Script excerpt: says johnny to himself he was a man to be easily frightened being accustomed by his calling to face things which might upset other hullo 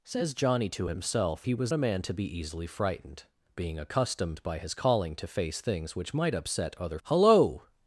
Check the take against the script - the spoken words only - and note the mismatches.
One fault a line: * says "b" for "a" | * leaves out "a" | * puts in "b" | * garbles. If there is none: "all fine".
all fine